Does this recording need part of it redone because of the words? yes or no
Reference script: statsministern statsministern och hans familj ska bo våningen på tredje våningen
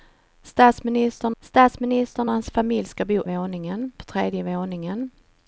no